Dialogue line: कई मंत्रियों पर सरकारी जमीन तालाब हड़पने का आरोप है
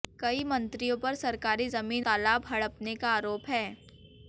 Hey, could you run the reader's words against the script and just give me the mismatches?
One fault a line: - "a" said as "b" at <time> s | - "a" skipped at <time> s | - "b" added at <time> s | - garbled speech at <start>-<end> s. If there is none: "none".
none